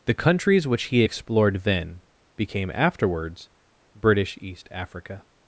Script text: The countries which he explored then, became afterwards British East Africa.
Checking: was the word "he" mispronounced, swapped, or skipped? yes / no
no